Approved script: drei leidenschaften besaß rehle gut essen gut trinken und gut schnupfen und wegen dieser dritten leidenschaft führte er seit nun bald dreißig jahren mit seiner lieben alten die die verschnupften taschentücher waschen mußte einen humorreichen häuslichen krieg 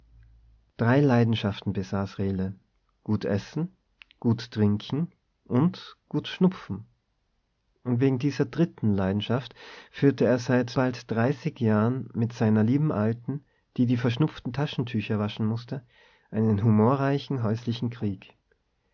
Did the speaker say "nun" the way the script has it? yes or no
no